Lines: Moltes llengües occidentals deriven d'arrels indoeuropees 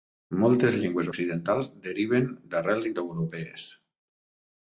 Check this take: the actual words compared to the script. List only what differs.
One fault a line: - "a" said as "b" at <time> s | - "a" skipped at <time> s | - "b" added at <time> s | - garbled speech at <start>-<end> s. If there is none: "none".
none